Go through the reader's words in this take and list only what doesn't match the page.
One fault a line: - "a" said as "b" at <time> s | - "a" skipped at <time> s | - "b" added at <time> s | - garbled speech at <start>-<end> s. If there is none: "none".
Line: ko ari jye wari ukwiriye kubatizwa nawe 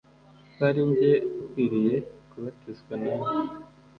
- "wari" skipped at 1.1 s